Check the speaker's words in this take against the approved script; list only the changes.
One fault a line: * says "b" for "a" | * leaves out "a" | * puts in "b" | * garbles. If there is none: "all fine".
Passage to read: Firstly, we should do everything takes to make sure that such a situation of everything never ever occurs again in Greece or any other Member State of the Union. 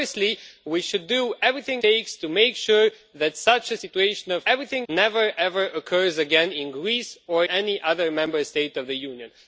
all fine